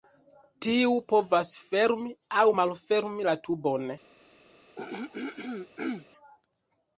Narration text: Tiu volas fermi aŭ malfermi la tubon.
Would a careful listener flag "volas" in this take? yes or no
yes